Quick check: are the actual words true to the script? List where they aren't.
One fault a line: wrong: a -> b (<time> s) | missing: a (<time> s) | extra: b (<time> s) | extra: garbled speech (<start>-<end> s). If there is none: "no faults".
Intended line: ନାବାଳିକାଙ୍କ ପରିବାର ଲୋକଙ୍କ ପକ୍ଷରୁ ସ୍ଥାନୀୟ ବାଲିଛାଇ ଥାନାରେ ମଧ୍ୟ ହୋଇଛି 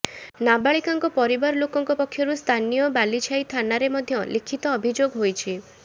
extra: ଲିଖିତ ଅଭିଯୋଗ (4.3 s)